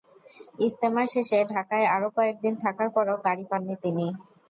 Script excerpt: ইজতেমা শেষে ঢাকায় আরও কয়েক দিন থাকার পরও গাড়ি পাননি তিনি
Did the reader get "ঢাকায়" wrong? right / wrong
right